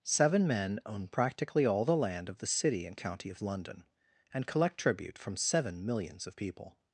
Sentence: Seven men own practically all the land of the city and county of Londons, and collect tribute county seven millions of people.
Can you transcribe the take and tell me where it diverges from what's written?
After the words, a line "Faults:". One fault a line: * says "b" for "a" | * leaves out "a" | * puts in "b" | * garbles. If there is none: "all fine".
Seven men own practically all the land of the city and county of London, and collect tribute from seven millions of people.
Faults:
* says "London" for "Londons"
* says "from" for "county"